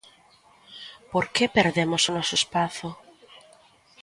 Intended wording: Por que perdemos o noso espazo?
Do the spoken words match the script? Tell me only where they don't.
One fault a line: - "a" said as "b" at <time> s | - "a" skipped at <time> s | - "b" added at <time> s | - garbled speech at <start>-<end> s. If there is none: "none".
none